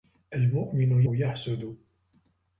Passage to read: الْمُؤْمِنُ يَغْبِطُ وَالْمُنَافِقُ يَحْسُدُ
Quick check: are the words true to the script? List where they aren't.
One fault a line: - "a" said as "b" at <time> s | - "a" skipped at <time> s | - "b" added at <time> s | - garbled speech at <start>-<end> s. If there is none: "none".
- "يَغْبِطُ وَالْمُنَافِقُ" skipped at 1.0 s